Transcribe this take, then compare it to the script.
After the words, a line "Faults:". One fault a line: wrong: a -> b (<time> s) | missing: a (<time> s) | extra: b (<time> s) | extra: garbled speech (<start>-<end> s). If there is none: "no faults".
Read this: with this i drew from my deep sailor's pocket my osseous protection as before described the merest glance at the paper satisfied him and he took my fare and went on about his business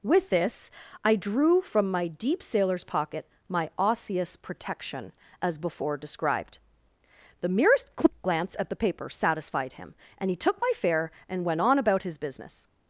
with this i drew from my deep sailor's pocket my osseous protection as before described the merest glance at the paper satisfied him and he took my fare and went on about his business
Faults:
no faults